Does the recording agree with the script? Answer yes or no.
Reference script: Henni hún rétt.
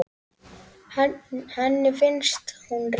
no